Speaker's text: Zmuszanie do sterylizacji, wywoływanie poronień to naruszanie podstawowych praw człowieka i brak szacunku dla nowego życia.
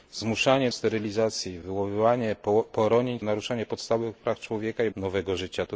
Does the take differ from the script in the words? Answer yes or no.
yes